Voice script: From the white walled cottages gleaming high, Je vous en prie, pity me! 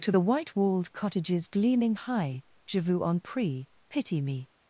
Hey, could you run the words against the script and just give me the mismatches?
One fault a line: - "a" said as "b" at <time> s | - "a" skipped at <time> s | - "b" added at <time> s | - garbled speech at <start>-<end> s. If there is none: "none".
- "From" said as "To" at 0.0 s